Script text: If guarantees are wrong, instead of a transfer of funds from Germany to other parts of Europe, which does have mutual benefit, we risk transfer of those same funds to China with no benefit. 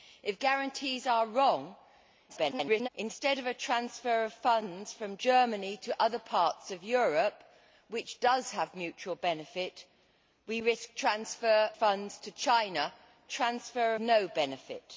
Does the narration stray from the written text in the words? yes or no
yes